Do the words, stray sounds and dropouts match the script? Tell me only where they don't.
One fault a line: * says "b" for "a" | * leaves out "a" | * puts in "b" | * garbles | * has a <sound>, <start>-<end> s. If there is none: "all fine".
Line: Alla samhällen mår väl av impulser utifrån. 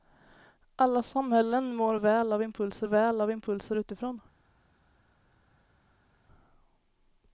* puts in "väl av impulser"